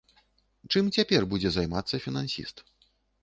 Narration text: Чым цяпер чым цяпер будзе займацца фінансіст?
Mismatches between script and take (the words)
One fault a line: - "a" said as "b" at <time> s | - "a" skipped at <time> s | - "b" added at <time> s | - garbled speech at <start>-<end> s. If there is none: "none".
- "чым цяпер" skipped at 1.3 s